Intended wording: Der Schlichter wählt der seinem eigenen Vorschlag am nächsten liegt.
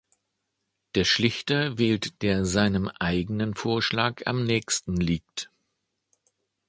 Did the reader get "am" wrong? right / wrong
right